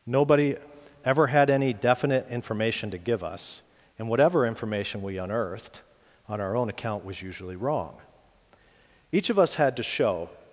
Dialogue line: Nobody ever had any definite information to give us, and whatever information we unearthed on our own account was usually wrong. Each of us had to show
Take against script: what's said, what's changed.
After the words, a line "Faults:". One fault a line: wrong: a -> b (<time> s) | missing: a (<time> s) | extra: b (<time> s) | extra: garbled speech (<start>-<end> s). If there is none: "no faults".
Nobody ever had any definite information to give us, and whatever information we unearthed on our own account was usually wrong. Each of us had to show
Faults:
no faults